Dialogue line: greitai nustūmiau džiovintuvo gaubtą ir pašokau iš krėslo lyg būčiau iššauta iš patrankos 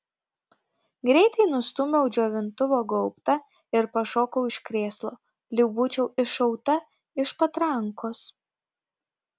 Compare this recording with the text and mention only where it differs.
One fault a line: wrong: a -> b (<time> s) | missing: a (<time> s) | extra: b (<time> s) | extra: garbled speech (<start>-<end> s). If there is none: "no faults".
no faults